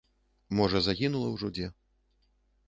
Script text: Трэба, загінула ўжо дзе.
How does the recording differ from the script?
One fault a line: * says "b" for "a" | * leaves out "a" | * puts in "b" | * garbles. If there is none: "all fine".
* says "Можа" for "Трэба"